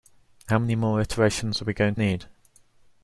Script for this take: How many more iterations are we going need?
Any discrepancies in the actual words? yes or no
no